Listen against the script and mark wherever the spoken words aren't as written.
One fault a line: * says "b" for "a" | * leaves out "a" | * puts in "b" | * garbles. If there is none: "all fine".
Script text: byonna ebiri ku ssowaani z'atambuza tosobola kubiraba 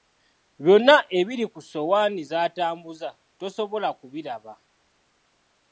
all fine